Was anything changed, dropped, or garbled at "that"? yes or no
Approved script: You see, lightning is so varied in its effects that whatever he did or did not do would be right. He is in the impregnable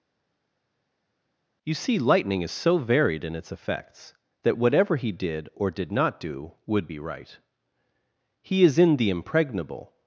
no